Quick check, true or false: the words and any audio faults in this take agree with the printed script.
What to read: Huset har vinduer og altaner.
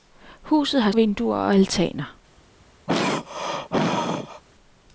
false